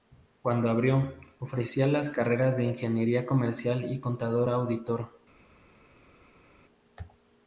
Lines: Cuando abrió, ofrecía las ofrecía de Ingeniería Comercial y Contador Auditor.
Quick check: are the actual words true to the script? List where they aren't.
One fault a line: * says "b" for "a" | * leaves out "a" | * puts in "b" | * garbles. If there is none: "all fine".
* says "carreras" for "ofrecía"